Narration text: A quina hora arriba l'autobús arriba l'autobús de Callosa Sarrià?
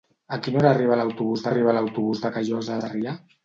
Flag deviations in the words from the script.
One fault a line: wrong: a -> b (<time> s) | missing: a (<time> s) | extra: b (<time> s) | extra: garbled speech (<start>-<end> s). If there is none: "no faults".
no faults